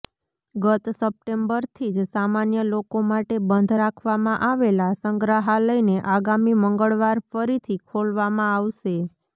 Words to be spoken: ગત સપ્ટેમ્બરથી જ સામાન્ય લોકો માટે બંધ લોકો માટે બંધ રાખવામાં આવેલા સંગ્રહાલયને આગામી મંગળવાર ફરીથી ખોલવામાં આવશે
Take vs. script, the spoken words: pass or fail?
fail